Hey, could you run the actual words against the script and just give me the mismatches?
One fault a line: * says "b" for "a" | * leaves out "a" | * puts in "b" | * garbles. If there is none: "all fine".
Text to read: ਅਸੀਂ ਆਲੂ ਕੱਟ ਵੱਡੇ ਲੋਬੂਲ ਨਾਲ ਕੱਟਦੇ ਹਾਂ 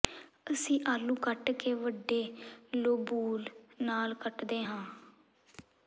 * puts in "ਕੇ"